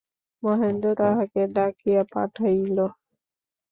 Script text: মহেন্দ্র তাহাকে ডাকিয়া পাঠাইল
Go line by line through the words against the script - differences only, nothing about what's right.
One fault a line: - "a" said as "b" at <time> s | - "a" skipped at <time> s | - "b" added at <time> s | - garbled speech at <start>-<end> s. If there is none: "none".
none